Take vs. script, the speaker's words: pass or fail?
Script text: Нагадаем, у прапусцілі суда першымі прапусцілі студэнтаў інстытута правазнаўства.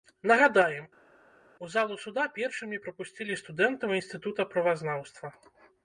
fail